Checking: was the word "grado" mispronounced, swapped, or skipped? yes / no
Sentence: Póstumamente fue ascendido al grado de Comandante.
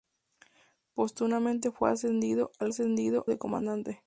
yes